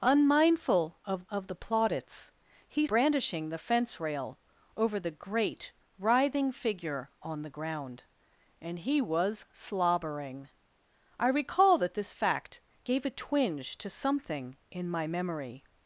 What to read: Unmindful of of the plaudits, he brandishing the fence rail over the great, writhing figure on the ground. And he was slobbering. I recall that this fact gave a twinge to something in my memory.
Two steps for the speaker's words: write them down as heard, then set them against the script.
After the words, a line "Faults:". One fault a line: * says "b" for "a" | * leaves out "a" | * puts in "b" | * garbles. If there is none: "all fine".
Unmindful of of the plaudits, he brandishing the fence rail over the great, writhing figure on the ground. And he was slobbering. I recall that this fact gave a twinge to something in my memory.
Faults:
all fine